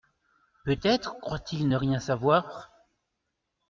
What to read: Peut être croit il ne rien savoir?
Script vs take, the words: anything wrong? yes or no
no